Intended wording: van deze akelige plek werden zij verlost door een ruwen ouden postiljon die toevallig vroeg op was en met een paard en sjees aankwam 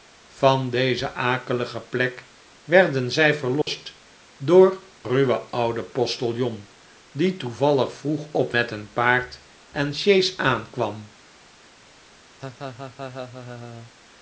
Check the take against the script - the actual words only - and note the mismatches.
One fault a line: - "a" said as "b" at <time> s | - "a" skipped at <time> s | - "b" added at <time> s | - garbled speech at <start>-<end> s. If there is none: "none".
- "een" skipped at 4.8 s
- "was en" skipped at 8.5 s